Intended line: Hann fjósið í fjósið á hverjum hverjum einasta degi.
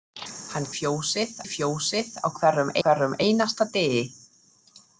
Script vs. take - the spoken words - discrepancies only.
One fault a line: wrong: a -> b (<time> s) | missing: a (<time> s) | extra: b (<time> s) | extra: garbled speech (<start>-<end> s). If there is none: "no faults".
no faults